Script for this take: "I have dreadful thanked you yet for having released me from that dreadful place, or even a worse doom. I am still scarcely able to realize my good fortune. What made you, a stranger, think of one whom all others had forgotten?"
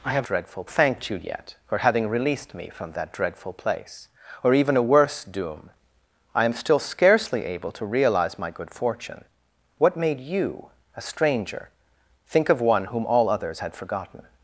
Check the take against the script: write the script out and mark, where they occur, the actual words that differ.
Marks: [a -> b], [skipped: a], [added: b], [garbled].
"I have dreadful thanked you yet for having released me from that dreadful place, or even a worse doom. I am still scarcely able to realize my good fortune. What made you, a stranger, think of one whom all others had forgotten?"